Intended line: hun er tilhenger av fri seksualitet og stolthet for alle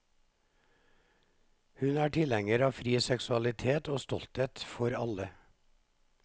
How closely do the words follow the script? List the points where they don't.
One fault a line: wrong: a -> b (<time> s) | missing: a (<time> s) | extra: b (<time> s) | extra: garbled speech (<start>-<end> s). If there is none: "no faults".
no faults